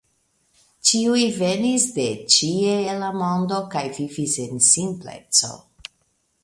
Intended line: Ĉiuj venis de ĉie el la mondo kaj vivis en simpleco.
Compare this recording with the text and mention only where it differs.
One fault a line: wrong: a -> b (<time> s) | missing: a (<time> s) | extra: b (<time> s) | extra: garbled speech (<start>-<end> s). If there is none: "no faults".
no faults